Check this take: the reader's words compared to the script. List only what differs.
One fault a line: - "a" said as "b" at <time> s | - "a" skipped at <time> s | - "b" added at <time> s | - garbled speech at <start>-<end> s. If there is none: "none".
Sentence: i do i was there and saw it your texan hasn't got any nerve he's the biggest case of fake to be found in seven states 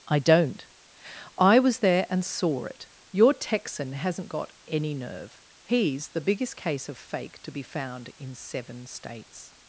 - "do" said as "don't" at 0.2 s